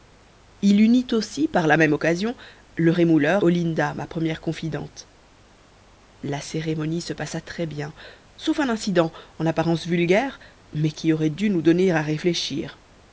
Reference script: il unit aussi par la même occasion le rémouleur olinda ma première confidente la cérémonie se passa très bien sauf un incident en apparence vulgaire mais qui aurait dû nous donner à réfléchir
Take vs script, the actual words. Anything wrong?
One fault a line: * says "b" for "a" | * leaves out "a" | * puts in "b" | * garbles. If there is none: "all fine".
all fine